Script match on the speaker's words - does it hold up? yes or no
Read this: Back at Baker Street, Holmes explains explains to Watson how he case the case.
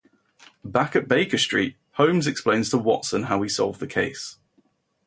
no